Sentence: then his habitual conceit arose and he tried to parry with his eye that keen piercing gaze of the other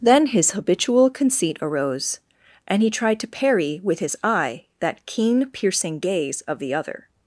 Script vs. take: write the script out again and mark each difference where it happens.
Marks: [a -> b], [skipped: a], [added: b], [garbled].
then his habitual conceit arose and he tried to parry with his eye that keen piercing gaze of the other